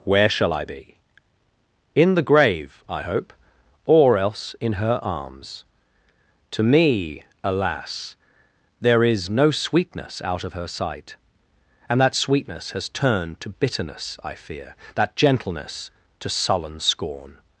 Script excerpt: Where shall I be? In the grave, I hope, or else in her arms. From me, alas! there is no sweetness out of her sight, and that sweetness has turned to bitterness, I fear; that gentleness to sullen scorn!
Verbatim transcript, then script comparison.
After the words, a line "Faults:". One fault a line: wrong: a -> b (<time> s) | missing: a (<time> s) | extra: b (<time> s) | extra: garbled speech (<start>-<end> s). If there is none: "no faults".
Where shall I be? In the grave, I hope, or else in her arms. To me, alas! there is no sweetness out of her sight, and that sweetness has turned to bitterness, I fear; that gentleness to sullen scorn!
Faults:
wrong: From -> To (6.5 s)